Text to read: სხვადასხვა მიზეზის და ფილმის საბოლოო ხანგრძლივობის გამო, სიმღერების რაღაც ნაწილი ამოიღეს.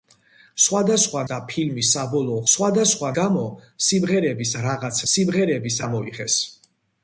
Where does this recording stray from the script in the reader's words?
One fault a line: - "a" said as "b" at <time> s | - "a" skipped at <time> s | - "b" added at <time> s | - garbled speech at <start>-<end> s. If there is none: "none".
- "მიზეზის" skipped at 1.2 s
- "ხანგრძლივობის" said as "სხვადასხვა" at 2.5 s
- "ნაწილი" said as "სიმღერების" at 5.1 s